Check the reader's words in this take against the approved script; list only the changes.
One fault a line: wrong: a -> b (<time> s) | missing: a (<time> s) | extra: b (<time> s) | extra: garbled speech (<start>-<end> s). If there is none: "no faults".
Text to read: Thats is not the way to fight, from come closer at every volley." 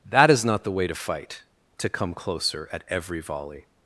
wrong: Thats -> That (0.1 s)
wrong: from -> to (1.8 s)